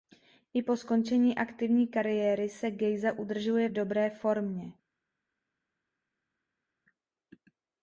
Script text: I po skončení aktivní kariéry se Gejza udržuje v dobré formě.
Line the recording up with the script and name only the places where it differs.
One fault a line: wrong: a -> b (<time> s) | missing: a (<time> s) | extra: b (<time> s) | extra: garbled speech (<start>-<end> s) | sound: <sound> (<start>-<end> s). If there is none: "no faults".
no faults